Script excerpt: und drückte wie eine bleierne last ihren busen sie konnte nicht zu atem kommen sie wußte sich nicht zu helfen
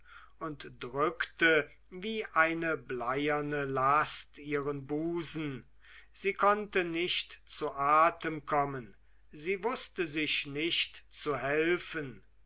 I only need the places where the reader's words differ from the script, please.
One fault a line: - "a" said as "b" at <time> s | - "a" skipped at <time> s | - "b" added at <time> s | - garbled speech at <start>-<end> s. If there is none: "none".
none